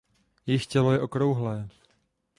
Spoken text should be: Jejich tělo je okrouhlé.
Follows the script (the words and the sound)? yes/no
yes